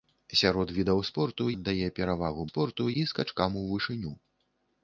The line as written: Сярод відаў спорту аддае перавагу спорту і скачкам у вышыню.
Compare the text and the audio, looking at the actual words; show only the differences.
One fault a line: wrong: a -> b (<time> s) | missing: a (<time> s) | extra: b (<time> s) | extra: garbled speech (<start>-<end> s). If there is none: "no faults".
no faults